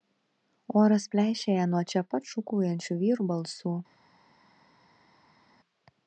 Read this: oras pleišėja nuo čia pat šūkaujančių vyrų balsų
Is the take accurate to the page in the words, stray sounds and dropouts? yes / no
yes